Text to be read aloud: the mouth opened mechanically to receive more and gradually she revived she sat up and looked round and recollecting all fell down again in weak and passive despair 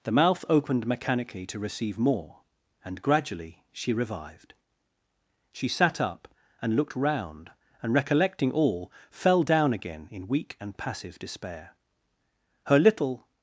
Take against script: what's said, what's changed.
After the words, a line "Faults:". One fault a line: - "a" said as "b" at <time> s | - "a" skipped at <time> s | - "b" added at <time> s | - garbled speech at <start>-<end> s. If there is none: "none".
the mouth opened mechanically to receive more and gradually she revived she sat up and looked round and recollecting all fell down again in weak and passive despair her little
Faults:
- "her little" added at 12.7 s